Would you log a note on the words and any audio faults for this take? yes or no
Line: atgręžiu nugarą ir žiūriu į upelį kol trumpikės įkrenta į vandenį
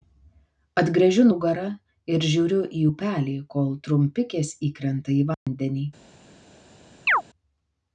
yes